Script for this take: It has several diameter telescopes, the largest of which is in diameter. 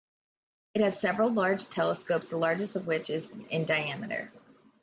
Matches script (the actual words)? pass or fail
fail